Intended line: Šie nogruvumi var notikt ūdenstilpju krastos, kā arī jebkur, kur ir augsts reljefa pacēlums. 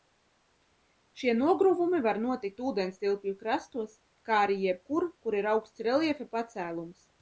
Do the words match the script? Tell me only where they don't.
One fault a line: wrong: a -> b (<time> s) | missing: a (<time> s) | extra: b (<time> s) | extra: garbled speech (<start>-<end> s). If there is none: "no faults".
no faults